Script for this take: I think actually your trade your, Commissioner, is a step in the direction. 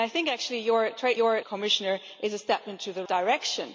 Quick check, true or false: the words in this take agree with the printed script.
true